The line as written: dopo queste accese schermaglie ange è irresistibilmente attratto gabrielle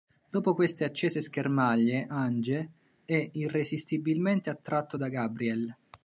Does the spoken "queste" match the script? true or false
true